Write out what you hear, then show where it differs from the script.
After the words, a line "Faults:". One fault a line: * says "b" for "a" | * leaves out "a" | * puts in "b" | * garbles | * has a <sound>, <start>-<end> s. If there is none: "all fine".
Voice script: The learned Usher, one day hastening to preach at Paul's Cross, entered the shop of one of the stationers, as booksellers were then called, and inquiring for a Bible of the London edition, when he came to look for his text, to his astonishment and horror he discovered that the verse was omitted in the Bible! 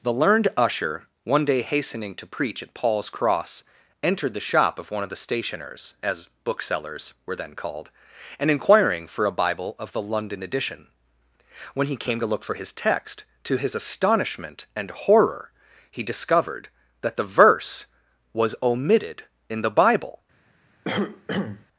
The learned Usher, one day hastening to preach at Paul's Cross, entered the shop of one of the stationers, as booksellers were then called, and inquiring for a Bible of the London edition, when he came to look for his text, to his astonishment and horror he discovered that the verse was omitted in the Bible!
Faults:
* has a cough, 20.8-21.7 s